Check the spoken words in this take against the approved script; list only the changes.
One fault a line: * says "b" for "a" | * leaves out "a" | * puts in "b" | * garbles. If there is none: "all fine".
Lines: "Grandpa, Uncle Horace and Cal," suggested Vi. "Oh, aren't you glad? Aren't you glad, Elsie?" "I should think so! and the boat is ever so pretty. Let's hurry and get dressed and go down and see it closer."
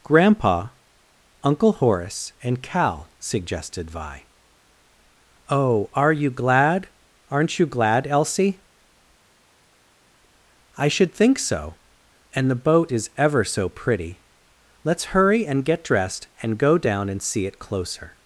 * says "are" for "aren't"